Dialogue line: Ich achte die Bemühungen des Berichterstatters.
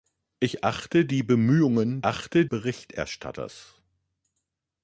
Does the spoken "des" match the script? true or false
false